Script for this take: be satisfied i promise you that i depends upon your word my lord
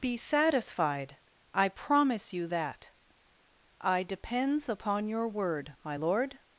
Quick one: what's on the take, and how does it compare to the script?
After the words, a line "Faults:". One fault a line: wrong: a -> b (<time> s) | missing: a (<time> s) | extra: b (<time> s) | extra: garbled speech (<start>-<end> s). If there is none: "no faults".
be satisfied i promise you that i depends upon your word my lord
Faults:
no faults